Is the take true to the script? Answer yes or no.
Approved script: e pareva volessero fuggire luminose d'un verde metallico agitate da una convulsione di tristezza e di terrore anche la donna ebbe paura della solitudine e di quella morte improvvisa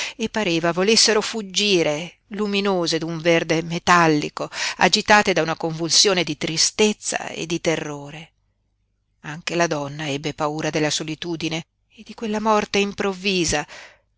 yes